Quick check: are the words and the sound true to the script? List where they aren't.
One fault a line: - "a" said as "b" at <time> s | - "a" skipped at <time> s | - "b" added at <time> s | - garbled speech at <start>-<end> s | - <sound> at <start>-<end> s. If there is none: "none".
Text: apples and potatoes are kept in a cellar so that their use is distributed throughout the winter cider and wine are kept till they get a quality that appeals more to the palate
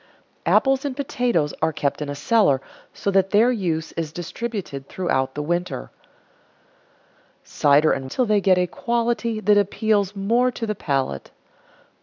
- "wine are kept" skipped at 8.1 s